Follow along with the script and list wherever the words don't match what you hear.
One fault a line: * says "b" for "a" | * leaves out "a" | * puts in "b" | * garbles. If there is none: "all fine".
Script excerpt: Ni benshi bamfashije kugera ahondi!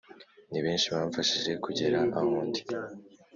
all fine